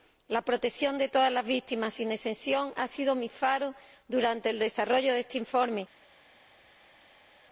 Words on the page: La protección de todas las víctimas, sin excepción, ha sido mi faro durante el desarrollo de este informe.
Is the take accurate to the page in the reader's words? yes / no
yes